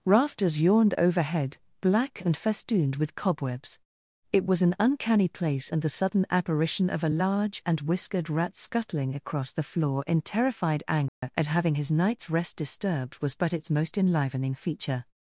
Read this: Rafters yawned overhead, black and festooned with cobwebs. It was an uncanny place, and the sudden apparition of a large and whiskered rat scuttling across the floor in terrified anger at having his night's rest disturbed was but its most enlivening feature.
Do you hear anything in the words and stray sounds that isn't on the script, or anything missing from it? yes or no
yes